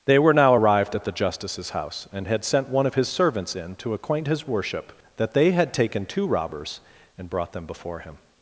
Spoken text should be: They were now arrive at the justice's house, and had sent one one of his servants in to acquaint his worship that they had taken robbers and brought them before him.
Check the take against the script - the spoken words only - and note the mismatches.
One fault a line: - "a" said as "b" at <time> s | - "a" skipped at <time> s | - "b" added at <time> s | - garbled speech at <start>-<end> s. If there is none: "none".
- "arrive" said as "arrived" at 0.5 s
- "one" skipped at 2.9 s
- "two" added at 6.1 s